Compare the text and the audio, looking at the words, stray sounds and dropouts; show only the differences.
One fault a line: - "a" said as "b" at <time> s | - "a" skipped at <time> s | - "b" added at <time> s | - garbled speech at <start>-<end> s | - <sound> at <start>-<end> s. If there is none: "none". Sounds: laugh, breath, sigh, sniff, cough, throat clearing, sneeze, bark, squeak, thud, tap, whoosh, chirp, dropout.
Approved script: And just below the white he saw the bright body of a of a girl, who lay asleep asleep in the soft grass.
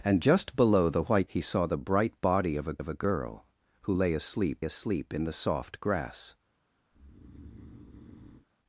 - breath at 6.9-8.5 s